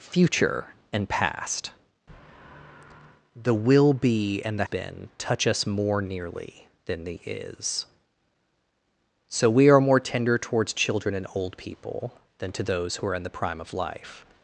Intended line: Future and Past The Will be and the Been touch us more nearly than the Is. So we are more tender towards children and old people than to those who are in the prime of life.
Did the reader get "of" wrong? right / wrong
right